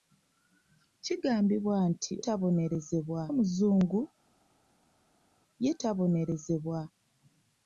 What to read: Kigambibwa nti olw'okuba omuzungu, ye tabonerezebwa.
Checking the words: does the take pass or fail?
fail